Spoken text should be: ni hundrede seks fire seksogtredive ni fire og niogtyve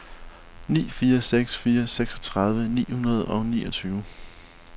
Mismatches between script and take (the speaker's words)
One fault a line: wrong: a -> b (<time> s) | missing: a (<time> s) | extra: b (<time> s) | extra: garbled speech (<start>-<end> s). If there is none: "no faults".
wrong: hundrede -> fire (0.9 s)
wrong: fire -> hundrede (2.9 s)